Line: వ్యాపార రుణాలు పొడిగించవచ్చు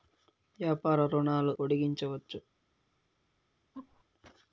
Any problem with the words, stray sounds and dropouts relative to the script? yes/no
yes